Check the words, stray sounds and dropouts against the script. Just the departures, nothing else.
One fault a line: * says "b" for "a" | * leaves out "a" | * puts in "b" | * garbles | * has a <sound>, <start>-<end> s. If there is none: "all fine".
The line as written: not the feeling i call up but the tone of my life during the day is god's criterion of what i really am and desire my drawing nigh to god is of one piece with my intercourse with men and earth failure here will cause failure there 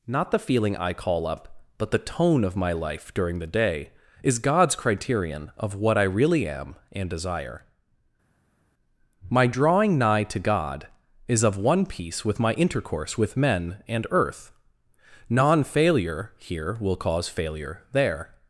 * puts in "non"